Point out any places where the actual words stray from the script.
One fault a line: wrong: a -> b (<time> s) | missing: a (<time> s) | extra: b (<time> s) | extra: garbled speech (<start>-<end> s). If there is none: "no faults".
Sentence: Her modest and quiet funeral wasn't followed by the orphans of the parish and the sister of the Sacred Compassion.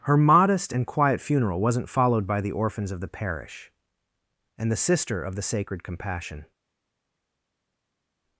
no faults